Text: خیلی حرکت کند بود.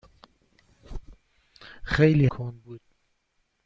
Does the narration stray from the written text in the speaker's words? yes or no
yes